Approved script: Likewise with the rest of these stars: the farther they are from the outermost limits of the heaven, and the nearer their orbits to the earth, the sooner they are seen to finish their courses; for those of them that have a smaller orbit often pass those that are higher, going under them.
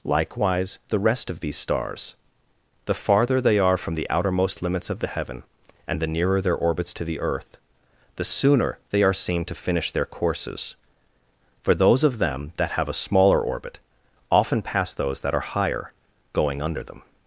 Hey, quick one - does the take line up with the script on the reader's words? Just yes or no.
no